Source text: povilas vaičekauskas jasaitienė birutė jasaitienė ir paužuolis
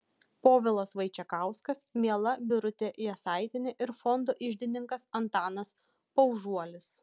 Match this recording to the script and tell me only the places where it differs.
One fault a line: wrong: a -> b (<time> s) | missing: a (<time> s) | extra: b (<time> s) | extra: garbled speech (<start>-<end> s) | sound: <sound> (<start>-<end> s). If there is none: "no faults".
wrong: jasaitienė -> miela (2.0 s)
extra: fondo iždininkas antanas (4.0 s)